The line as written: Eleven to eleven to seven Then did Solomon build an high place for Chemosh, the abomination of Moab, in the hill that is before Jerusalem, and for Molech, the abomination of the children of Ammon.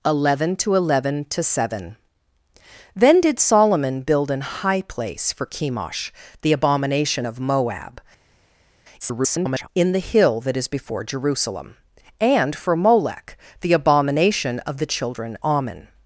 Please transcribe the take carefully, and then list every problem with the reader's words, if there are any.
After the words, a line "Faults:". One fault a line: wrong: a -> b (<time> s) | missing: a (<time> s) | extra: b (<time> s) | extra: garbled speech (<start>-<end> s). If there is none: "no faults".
Eleven to eleven to seven Then did Solomon build an high place for Chemosh, the abomination of Moab, [garbled] in the hill that is before Jerusalem, and for Molech, the abomination of the children Ammon.
Faults:
extra: garbled speech (9.0-9.7 s)
missing: of (15.4 s)